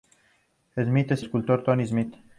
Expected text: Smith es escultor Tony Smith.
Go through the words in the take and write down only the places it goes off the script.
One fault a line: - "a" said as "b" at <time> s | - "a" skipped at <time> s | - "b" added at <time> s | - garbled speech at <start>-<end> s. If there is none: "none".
none